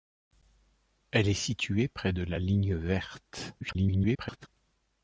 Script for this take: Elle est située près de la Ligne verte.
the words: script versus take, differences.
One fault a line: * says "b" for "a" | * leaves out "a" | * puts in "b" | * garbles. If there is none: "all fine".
* garbles